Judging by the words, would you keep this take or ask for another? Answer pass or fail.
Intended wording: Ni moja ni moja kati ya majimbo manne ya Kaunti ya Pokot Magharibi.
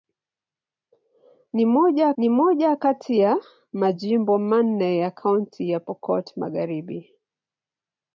pass